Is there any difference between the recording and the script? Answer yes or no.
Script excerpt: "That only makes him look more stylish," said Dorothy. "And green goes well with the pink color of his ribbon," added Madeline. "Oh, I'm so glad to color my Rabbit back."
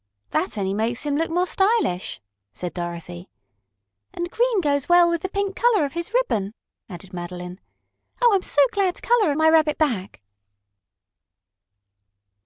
no